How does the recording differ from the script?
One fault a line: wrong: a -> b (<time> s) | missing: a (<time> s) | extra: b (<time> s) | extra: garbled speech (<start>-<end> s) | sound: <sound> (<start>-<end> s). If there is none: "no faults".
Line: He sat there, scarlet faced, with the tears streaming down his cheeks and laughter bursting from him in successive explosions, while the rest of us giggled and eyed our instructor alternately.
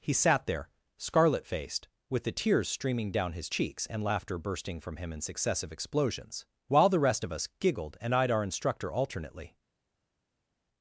no faults